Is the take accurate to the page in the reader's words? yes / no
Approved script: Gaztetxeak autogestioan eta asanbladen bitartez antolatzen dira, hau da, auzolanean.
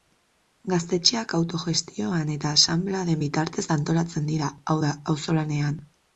yes